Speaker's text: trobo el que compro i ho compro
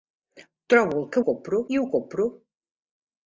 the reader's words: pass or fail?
pass